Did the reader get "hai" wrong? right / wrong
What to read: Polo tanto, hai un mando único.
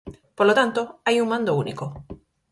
right